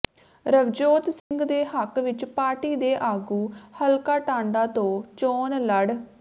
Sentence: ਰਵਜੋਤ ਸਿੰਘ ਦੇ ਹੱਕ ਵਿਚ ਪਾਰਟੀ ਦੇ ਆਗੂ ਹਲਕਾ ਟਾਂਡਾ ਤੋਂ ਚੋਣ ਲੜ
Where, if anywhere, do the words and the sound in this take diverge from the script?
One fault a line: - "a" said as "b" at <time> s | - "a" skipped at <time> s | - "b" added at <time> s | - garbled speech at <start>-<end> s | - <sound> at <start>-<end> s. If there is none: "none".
- dropout at 1.2-1.3 s